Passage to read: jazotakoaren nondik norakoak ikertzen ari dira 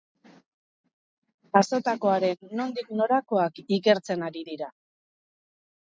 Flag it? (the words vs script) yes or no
no